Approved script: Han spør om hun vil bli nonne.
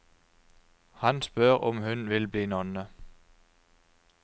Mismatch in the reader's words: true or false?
false